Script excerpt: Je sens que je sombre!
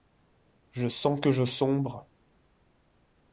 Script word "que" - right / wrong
right